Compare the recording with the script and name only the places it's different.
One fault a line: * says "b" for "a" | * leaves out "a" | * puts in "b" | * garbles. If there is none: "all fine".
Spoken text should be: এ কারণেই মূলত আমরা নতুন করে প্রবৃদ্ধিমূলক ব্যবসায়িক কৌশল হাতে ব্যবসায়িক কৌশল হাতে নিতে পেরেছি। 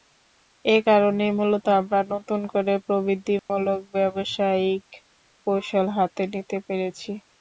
* leaves out "ব্যবসায়িক কৌশল হাতে"